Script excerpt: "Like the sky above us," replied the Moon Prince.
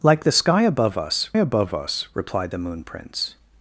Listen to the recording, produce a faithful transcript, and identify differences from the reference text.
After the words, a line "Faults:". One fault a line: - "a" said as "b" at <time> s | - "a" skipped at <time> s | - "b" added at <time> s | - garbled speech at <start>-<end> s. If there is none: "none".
"Like the sky above us above us," replied the Moon Prince.
Faults:
- "above us" added at 1.4 s